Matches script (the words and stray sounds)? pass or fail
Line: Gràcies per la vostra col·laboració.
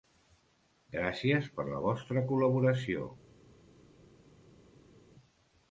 pass